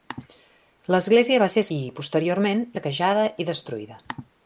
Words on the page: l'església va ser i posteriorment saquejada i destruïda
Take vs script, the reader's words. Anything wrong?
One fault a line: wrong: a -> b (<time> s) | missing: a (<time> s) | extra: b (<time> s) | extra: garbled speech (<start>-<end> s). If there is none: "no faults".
no faults